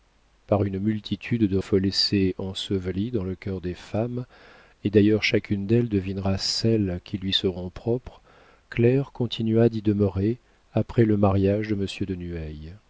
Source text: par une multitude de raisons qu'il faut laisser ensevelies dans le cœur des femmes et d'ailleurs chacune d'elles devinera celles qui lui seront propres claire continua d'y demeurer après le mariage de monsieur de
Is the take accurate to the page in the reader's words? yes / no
no